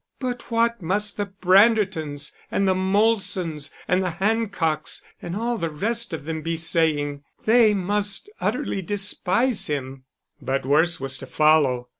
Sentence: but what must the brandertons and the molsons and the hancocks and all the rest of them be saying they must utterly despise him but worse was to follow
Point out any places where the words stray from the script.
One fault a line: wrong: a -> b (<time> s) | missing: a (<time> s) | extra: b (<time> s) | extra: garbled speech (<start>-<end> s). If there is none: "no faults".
no faults